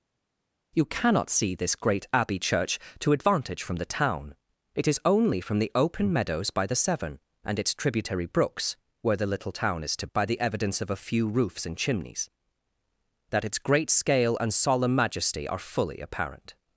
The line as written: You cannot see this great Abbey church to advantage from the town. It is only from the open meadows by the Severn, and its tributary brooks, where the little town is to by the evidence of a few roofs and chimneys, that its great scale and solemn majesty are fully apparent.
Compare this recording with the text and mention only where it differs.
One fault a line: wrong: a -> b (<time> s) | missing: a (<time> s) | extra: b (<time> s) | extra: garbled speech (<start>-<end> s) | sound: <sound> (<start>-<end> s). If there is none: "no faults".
no faults